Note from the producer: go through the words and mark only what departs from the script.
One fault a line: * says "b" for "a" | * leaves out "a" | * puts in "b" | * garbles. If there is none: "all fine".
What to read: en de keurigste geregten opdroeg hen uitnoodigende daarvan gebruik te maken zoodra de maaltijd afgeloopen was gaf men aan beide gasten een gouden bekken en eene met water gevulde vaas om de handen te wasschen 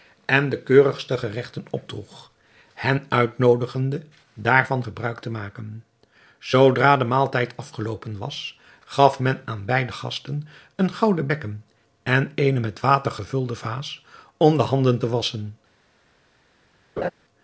all fine